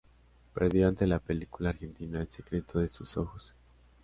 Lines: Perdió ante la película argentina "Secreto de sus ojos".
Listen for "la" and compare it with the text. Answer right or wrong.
right